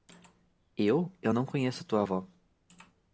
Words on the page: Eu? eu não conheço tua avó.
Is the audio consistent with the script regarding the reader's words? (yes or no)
yes